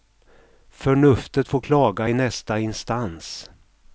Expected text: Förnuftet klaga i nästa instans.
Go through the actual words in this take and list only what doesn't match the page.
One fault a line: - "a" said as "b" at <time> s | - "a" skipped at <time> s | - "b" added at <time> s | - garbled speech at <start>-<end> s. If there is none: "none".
- "får" added at 1.5 s